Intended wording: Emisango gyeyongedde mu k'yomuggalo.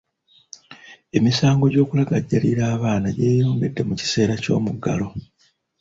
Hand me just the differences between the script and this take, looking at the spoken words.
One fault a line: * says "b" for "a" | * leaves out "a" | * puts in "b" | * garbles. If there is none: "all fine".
* puts in "gy'okulagajjalira abaana"
* puts in "kiseera"